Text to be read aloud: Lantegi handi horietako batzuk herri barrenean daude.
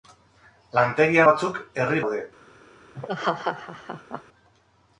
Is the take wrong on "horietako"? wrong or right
wrong